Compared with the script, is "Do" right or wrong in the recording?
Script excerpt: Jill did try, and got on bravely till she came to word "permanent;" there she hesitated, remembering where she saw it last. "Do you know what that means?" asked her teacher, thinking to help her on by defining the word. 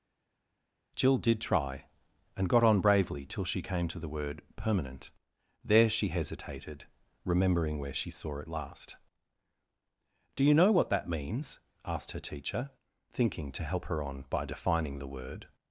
right